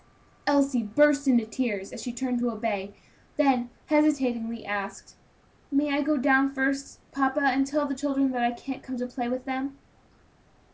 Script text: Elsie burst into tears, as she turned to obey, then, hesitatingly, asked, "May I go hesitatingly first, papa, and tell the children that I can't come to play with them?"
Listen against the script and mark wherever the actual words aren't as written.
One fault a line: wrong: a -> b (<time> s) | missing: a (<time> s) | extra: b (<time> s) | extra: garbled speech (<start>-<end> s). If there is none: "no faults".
wrong: hesitatingly -> down (6.2 s)